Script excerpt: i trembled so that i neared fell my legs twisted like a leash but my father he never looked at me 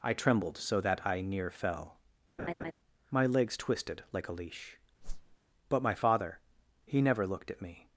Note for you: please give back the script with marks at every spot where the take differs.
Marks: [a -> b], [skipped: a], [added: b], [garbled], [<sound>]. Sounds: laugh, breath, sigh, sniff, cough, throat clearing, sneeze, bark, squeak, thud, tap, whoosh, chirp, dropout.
i trembled so that i [neared -> near] fell [laugh] my legs twisted like a leash [whoosh] but my father he never looked at me